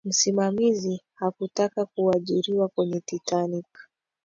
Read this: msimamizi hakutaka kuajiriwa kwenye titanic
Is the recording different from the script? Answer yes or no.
no